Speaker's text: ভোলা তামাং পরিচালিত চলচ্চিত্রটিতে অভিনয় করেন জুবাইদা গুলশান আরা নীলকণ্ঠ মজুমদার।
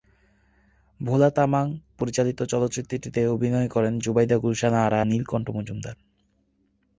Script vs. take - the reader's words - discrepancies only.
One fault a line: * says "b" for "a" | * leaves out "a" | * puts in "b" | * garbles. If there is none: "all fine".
all fine